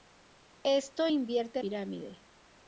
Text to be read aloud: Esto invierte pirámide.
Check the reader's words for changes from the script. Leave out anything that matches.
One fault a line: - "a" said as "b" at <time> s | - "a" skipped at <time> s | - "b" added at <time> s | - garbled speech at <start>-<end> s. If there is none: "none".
none